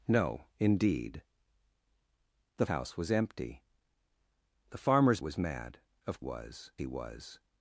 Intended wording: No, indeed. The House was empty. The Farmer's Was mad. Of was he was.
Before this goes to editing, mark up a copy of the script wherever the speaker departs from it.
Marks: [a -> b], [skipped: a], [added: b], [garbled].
No, indeed. The House was empty. The Farmer's Was mad. Of was he was.